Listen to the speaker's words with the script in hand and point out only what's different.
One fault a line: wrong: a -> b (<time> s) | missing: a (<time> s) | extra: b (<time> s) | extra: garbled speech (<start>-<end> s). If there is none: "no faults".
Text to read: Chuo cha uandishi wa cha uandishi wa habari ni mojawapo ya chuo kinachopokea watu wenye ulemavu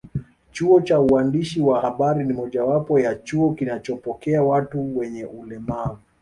missing: cha uandishi wa (1.8 s)